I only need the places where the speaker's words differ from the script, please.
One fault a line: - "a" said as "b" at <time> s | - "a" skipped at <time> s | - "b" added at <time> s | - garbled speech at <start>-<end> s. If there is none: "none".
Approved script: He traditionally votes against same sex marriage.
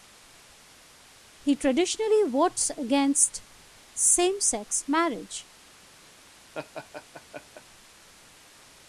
none